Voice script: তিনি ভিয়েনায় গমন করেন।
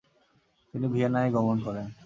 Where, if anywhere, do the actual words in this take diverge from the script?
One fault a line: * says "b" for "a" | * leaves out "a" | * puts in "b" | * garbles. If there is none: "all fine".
all fine